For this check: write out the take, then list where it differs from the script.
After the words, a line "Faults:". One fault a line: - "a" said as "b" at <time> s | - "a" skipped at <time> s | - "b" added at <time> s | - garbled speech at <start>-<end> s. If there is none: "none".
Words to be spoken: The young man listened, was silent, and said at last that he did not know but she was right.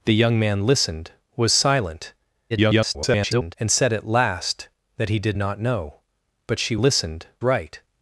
The young man listened, was silent, [garbled] and said at last that he did not know but she listened right.
Faults:
- garbled speech at 2.5-3.6 s
- "was" said as "listened" at 6.8 s